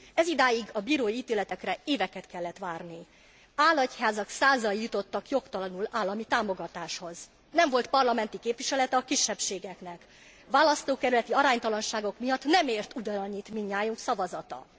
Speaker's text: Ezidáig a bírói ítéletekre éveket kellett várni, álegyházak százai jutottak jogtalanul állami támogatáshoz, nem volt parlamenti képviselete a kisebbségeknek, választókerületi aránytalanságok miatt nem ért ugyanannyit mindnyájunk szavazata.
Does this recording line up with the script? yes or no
yes